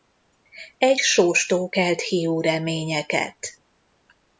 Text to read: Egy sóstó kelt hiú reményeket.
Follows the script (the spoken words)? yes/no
yes